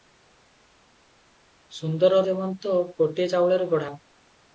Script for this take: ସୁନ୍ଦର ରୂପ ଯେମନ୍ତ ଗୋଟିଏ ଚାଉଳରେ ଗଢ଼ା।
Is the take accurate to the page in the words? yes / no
no